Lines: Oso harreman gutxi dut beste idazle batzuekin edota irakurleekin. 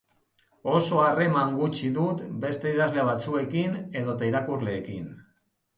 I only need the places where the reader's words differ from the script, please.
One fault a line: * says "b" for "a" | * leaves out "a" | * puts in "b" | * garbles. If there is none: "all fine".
all fine